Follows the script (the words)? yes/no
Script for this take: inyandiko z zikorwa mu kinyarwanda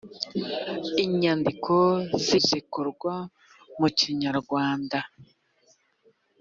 yes